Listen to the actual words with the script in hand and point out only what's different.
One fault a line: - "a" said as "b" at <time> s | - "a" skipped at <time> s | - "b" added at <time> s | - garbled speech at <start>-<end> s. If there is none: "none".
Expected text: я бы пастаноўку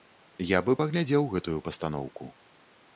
- "паглядзеў гэтую" added at 0.8 s